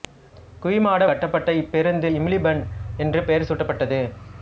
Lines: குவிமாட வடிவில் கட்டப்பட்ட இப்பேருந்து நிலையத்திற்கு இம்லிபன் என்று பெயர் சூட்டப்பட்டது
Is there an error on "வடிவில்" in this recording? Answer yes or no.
yes